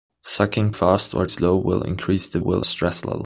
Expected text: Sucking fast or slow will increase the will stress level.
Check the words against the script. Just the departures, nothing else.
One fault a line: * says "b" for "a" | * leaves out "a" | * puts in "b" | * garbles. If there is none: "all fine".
all fine